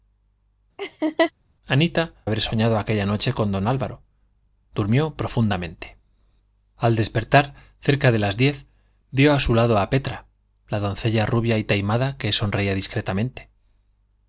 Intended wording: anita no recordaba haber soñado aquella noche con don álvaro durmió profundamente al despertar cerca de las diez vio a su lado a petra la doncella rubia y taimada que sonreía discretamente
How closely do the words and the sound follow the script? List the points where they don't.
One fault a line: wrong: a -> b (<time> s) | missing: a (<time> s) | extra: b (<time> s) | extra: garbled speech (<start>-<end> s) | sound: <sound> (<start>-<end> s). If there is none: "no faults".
sound: laugh (0.8-1.3 s)
missing: no recordaba (2.1 s)